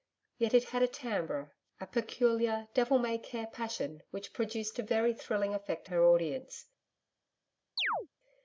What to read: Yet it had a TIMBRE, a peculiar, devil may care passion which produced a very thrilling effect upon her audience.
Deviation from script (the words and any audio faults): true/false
true